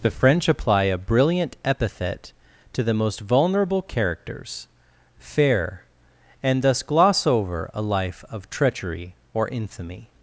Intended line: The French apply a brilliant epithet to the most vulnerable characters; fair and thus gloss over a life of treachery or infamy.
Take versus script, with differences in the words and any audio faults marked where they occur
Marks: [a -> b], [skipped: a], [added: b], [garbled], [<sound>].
The French apply a brilliant epithet to the most vulnerable characters; fair and thus gloss over a life of treachery or infamy.